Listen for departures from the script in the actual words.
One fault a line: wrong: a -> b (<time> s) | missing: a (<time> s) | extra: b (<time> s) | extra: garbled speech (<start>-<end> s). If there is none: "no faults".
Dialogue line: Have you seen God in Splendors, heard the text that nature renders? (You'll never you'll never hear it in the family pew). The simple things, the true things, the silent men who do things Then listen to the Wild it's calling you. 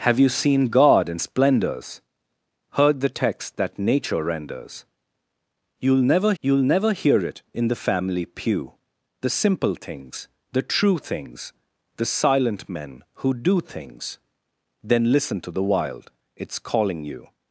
no faults